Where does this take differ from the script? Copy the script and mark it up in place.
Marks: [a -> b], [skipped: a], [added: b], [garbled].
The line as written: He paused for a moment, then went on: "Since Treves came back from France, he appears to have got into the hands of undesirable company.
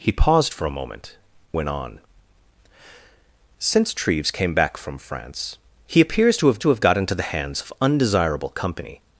He paused for a moment, [skipped: then] went on: "Since Treves came back from France, he appears to have [added: to have] got into the hands of undesirable company.